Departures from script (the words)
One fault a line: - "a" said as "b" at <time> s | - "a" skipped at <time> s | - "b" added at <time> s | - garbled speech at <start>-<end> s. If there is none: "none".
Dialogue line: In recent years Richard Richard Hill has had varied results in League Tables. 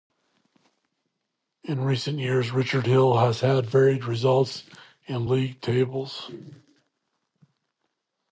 - "Richard" skipped at 2.9 s